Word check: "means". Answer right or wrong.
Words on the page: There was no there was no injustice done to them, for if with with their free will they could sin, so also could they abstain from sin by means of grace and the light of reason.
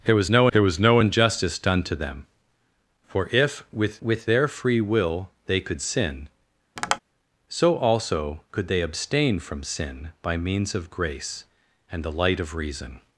right